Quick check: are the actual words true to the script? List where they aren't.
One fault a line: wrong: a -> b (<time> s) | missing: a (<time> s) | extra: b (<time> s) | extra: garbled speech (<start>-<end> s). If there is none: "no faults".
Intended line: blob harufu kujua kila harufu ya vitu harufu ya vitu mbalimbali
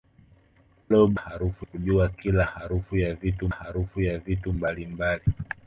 no faults